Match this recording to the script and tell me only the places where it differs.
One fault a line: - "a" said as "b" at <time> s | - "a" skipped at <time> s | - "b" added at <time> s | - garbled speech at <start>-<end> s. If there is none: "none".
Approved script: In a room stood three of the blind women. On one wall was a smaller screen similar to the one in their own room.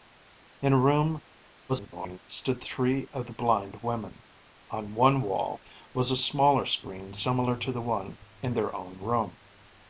- garbled speech at 1.7-2.2 s